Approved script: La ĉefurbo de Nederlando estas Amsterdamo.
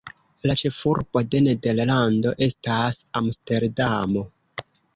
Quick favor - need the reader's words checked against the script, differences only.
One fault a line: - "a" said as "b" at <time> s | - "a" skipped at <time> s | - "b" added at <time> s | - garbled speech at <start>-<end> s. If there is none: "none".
none